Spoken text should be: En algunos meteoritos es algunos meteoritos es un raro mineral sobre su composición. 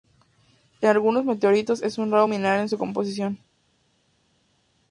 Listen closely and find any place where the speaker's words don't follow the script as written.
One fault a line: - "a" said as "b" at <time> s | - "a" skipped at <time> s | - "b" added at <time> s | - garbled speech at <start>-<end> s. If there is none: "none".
- "algunos meteoritos es" skipped at 2.0 s
- "sobre" said as "en" at 2.6 s